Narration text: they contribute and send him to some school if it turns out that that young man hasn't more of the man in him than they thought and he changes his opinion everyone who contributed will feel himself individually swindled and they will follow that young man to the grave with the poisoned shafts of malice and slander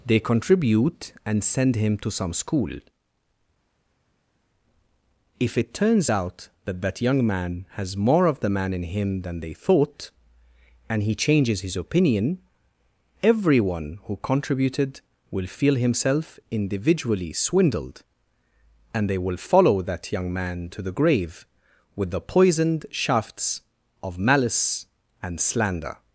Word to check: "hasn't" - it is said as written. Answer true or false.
false